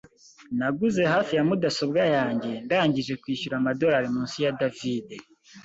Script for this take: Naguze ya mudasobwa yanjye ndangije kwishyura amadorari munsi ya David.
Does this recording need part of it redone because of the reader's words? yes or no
yes